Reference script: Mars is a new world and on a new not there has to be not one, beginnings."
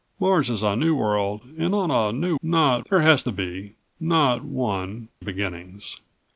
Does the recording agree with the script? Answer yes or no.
yes